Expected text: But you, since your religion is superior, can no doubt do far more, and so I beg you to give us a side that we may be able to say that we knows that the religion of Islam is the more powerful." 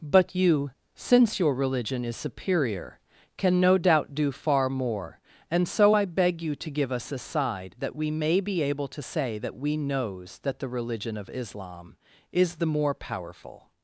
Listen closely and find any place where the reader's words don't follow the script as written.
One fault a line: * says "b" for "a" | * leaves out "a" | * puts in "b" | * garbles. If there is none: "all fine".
all fine